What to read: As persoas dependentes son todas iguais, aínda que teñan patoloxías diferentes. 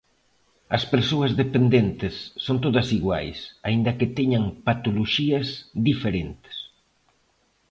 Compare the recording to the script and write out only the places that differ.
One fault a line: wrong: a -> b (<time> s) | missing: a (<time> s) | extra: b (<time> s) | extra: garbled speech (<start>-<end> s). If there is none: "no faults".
no faults